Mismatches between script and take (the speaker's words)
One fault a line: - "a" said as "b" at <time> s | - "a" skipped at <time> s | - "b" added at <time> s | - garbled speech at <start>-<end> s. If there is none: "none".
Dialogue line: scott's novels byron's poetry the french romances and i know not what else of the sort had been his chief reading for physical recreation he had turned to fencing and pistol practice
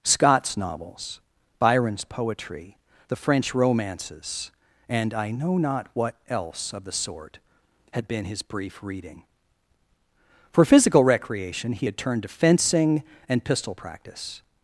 - "chief" said as "brief" at 8.4 s